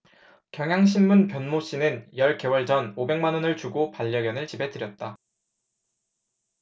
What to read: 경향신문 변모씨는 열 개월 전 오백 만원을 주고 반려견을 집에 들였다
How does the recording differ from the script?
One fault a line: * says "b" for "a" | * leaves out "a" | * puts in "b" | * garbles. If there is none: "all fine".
all fine